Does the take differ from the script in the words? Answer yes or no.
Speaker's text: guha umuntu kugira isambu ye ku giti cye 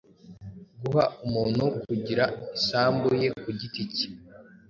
no